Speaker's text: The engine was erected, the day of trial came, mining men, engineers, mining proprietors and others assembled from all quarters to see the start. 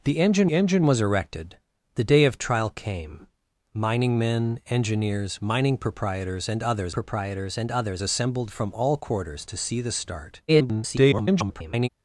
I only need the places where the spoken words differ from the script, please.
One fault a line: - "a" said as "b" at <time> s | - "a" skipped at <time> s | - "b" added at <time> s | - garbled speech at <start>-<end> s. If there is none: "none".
- "engine" added at 0.5 s
- "proprietors and others" added at 6.9 s
- garbled speech at 10.5-11.9 s